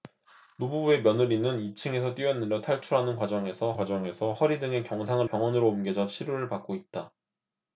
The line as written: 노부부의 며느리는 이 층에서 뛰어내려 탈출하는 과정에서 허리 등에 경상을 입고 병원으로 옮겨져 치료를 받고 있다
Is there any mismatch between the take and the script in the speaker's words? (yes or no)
yes